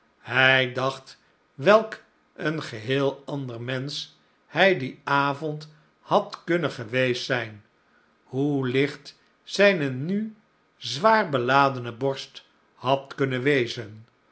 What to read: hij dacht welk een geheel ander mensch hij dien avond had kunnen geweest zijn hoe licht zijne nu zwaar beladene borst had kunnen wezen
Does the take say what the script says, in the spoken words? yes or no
yes